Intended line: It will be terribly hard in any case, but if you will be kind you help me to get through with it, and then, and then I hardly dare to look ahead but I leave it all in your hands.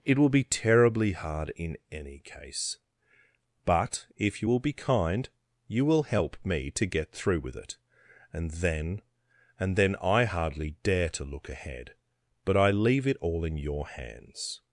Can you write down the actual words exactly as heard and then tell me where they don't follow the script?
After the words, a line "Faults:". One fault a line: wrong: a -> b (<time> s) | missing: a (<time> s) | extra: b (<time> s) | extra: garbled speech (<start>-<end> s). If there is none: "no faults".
It will be terribly hard in any case, but if you will be kind you will help me to get through with it, and then, and then I hardly dare to look ahead but I leave it all in your hands.
Faults:
extra: will (5.8 s)